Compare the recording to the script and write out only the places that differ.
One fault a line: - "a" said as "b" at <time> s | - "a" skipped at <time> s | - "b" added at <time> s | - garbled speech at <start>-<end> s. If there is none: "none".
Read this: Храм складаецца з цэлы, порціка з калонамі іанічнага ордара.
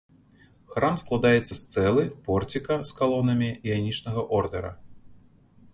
none